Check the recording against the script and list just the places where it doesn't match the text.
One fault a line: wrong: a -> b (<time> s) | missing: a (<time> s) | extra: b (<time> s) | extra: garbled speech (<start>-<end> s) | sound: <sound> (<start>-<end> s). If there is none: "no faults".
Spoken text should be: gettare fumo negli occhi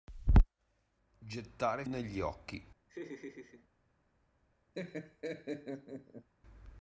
missing: fumo (1.9 s)
sound: laugh (2.9-3.7 s)
sound: laugh (4.7-6.3 s)